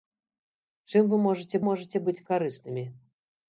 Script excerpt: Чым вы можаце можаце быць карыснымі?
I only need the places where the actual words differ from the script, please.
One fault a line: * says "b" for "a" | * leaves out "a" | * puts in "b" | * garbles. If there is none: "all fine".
all fine